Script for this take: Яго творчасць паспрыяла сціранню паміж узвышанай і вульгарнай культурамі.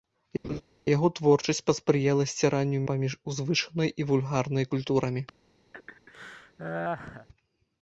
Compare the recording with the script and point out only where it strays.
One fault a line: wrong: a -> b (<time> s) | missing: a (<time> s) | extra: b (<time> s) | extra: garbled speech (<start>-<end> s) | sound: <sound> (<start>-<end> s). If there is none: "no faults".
sound: laugh (0.4-0.6 s)
sound: laugh (5.7-7.3 s)